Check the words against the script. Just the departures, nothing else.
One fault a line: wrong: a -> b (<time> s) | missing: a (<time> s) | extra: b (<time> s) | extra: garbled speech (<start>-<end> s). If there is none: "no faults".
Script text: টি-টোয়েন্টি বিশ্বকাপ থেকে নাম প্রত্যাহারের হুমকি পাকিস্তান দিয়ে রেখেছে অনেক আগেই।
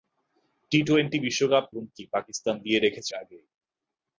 missing: থেকে নাম প্রত্যাহারের (1.6 s)
missing: অনেক (3.1 s)